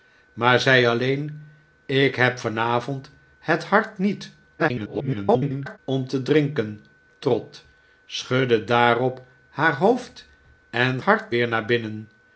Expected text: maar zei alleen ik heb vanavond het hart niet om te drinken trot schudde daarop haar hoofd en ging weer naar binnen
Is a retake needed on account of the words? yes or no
yes